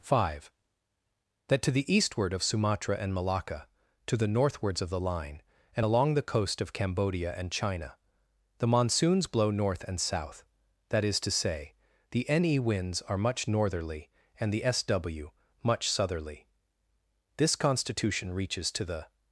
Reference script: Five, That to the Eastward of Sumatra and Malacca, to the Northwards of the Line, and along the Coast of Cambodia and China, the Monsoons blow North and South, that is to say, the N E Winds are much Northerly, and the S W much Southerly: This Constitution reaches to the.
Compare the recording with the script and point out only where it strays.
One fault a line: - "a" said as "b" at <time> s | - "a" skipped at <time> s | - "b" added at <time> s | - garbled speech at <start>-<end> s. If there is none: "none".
none